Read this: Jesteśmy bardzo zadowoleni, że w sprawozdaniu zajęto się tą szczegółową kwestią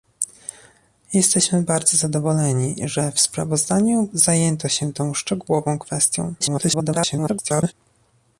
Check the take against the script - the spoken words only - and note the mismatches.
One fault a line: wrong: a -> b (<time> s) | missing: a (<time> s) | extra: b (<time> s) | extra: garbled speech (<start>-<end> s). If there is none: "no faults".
extra: garbled speech (6.4-7.7 s)